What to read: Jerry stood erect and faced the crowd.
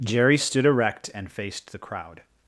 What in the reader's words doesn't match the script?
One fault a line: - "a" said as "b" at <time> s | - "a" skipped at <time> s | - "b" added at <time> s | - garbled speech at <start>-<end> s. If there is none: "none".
none